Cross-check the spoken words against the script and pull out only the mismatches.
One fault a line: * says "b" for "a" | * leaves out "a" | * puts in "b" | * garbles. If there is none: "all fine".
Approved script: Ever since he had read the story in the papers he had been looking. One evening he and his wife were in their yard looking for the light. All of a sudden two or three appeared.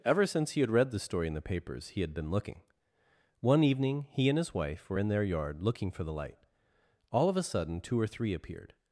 all fine